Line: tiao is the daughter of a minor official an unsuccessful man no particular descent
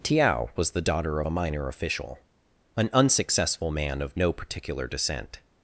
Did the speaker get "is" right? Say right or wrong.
wrong